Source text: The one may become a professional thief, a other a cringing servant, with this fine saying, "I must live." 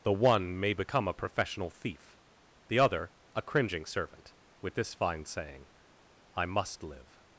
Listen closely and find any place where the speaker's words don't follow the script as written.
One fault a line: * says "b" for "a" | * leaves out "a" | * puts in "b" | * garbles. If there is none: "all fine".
* says "the" for "a"